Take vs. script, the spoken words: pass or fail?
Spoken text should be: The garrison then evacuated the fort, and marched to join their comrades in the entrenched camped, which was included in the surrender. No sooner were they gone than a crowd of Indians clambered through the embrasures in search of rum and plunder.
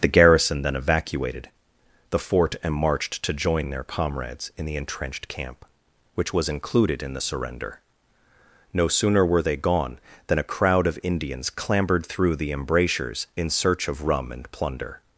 fail